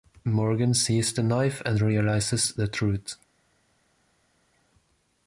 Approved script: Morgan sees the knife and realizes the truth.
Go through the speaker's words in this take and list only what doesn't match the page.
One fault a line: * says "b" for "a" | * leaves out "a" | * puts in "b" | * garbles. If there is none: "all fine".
all fine